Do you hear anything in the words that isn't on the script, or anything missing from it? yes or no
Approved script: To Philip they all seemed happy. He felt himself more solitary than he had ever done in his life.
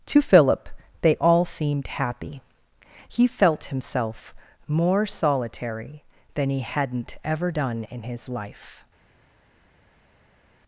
yes